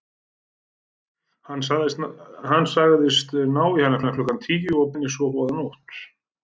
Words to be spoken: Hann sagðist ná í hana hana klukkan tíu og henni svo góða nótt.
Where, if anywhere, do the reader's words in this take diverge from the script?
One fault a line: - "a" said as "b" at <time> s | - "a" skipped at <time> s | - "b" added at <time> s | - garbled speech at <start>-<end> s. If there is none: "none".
none